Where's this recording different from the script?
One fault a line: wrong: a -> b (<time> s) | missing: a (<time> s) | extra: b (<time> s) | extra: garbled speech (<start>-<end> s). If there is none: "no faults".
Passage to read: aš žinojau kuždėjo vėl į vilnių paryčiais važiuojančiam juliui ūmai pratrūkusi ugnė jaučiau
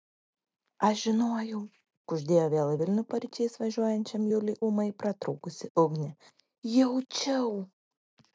no faults